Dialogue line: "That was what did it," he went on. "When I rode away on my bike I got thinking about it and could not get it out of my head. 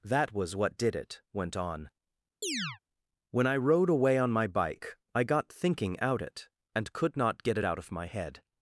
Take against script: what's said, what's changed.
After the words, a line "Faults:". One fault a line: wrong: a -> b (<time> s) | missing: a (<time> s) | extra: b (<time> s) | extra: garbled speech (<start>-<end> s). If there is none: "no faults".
"That was what did it," went on. "When I rode away on my bike I got thinking out it and could not get it out of my head.
Faults:
missing: he (1.2 s)
wrong: about -> out (6.0 s)